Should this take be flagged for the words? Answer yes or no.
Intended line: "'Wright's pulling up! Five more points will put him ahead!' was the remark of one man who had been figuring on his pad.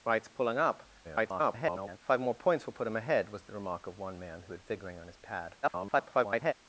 yes